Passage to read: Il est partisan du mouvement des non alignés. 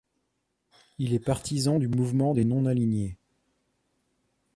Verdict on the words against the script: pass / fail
pass